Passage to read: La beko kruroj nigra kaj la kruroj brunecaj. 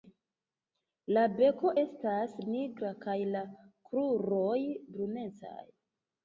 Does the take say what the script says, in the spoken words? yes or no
no